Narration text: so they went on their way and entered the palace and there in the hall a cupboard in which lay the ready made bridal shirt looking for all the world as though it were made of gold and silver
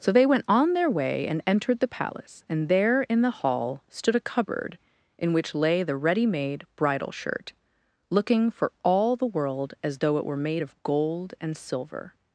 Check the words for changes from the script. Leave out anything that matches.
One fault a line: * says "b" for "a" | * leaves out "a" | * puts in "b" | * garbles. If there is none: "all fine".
* puts in "stood"